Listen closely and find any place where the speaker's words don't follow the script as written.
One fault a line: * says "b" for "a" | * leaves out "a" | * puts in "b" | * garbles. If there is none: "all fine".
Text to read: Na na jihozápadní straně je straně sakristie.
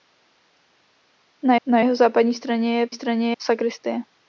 all fine